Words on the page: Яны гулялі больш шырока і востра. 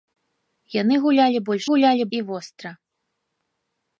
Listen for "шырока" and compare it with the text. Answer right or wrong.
wrong